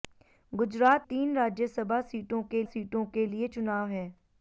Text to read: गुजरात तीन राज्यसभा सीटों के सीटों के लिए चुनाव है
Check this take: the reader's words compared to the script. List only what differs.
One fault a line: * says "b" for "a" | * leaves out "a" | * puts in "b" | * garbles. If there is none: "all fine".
all fine